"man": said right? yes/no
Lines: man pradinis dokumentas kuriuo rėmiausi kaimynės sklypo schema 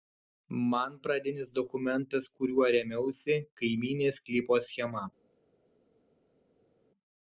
yes